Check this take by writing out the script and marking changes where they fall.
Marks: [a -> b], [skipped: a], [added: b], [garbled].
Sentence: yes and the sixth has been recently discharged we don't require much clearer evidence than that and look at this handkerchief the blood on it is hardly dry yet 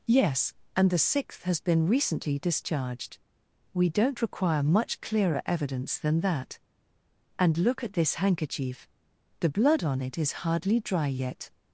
yes and the sixth has been recently discharged we don't require much clearer evidence than that and look at this handkerchief the blood on it is hardly dry yet